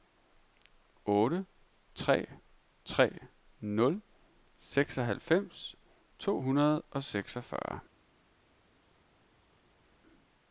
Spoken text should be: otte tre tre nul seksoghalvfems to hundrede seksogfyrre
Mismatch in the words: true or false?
true